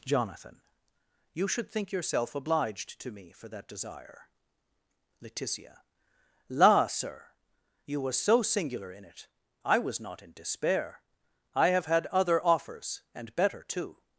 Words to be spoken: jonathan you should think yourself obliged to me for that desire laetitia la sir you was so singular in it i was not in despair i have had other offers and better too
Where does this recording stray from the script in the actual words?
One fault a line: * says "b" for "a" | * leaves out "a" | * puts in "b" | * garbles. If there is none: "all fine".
all fine